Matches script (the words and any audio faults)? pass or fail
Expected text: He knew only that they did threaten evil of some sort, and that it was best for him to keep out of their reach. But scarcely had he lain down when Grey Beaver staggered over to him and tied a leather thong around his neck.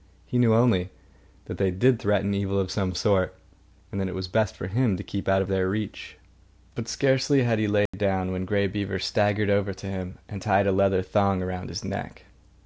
fail